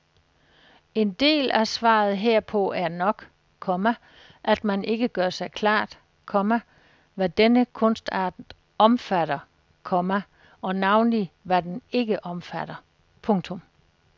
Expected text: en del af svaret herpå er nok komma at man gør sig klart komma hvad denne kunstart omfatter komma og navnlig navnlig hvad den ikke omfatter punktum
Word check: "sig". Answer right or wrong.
right